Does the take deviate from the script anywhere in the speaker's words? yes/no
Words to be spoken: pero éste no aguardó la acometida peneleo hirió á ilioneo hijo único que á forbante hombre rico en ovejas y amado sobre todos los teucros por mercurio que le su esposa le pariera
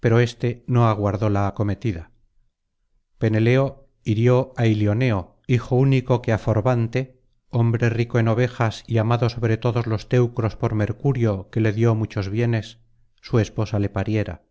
yes